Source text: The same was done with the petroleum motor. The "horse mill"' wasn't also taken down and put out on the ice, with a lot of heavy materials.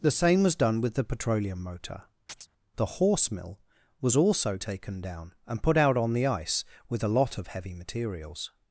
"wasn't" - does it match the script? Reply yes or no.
no